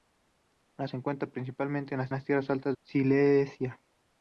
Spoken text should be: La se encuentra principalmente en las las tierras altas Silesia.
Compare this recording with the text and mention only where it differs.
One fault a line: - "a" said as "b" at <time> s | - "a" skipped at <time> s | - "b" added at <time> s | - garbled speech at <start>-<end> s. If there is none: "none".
none